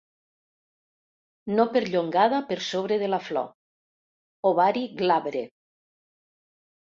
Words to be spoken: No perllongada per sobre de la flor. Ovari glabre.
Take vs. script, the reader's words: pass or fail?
pass